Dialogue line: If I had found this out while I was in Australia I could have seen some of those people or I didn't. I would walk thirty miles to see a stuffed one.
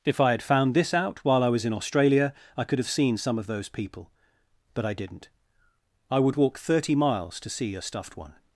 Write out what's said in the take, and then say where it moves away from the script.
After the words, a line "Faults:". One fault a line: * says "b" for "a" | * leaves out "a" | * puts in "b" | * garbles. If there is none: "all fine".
If I had found this out while I was in Australia I could have seen some of those people but I didn't. I would walk thirty miles to see a stuffed one.
Faults:
* says "but" for "or"